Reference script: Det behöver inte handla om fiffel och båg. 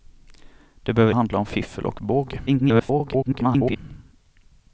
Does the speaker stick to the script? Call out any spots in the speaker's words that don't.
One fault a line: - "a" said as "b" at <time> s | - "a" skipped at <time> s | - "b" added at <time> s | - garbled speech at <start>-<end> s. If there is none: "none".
- "inte" skipped at 1.1 s
- garbled speech at 2.5-3.8 s